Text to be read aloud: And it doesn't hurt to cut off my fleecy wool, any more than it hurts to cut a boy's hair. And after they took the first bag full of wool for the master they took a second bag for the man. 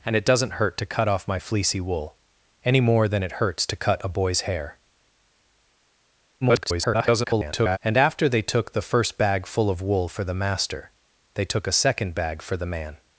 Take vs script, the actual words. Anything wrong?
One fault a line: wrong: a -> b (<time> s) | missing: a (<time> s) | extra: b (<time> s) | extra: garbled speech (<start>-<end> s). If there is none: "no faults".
extra: garbled speech (6.4-7.8 s)